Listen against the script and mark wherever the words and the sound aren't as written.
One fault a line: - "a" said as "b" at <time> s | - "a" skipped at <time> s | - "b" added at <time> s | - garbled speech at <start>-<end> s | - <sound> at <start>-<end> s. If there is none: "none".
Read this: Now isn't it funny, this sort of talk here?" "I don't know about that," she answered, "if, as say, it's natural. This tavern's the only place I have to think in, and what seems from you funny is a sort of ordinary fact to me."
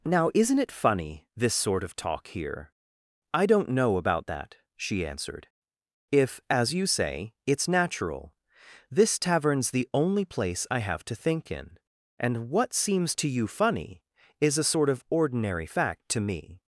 - "you" added at 6.7 s
- "from" said as "to" at 13.2 s